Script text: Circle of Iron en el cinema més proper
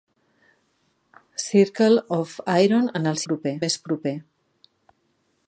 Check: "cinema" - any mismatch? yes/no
yes